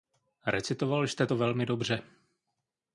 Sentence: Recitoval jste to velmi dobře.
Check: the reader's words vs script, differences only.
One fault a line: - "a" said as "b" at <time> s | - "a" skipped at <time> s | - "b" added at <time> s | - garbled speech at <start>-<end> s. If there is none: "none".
none